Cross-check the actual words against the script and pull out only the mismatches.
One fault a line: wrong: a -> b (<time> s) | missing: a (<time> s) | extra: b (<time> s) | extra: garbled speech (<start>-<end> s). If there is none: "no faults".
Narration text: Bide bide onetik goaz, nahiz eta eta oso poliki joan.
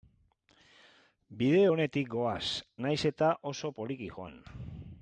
missing: bide (1.6 s)
missing: eta (3.3 s)